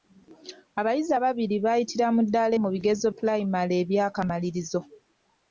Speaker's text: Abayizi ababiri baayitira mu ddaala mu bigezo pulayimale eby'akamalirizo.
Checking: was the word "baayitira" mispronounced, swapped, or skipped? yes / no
no